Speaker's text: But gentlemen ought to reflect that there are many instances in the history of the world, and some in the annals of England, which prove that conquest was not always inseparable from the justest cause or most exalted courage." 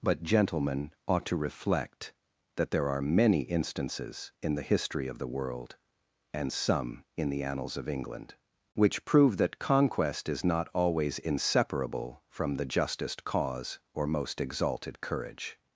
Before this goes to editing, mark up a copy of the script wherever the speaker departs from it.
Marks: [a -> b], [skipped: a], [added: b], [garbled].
But gentlemen ought to reflect that there are many instances in the history of the world, and some in the annals of England, which prove that conquest [was -> is] not always inseparable from the justest cause or most exalted courage."